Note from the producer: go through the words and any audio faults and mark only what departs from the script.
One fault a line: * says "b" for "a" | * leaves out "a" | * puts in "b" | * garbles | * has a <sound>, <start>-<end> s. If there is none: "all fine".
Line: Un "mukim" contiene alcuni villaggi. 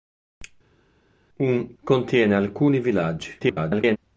* leaves out "mukim"
* garbles